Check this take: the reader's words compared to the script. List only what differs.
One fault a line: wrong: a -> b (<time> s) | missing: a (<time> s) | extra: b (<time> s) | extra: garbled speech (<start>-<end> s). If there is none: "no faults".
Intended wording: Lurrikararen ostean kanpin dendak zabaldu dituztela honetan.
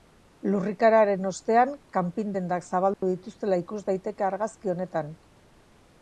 extra: ikus daiteke argazki (3.6 s)